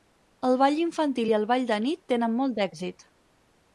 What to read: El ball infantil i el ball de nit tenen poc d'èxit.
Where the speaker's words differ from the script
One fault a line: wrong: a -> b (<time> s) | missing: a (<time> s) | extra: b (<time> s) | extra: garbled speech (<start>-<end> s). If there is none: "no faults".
wrong: poc -> molt (2.4 s)